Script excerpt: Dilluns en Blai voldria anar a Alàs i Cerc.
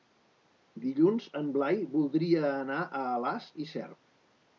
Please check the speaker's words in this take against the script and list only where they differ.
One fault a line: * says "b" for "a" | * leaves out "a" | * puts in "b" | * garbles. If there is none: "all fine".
all fine